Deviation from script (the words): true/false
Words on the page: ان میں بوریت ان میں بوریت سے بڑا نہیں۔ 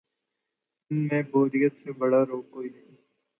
true